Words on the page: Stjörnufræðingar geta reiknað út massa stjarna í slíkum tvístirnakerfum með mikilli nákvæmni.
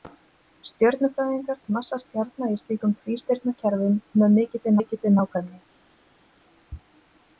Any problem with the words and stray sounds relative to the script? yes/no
yes